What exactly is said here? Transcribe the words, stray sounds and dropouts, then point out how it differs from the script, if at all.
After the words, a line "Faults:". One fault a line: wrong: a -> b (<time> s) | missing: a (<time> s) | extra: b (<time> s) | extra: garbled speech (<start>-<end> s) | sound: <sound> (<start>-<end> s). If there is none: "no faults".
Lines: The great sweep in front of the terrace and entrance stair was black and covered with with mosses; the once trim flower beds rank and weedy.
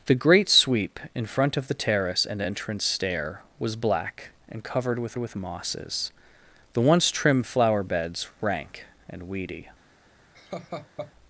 The great sweep in front of the terrace and entrance stair was black and covered with with mosses; the once trim flower beds rank and weedy.
Faults:
sound: laugh (10.3-11.1 s)